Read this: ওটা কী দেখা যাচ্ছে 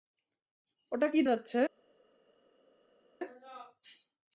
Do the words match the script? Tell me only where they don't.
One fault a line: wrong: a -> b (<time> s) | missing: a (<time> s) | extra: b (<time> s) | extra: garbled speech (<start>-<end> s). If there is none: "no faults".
missing: দেখা (1.2 s)